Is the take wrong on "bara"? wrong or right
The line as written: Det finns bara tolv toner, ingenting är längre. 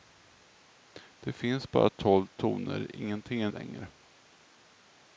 right